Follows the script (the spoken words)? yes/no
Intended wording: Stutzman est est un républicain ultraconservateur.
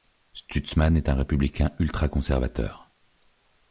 no